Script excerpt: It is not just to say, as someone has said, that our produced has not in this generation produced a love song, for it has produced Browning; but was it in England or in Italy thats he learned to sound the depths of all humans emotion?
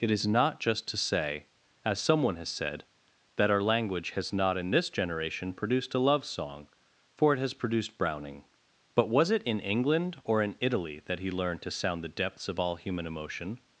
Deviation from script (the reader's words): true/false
true